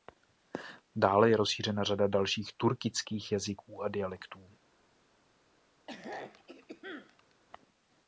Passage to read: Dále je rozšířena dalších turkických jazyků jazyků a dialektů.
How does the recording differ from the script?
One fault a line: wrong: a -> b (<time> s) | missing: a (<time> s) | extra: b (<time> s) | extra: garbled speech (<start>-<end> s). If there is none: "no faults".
extra: řada (1.8 s)
missing: jazyků (3.8 s)